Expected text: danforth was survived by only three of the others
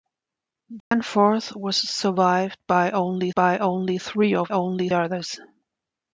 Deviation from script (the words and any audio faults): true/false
true